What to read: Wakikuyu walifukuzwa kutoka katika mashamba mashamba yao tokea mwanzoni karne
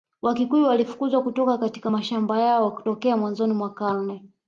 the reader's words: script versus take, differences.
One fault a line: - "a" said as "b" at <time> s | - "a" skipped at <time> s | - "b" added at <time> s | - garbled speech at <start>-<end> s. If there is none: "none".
- "mashamba" skipped at 2.4 s
- "mwa" added at 3.5 s